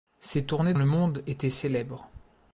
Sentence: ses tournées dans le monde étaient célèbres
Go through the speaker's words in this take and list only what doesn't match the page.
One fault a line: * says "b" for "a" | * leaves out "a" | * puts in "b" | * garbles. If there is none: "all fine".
* leaves out "dans"